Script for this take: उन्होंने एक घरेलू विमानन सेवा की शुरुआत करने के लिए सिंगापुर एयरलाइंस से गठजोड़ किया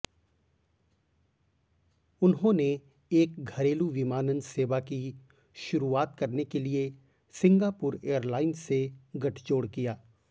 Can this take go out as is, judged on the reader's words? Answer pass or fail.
pass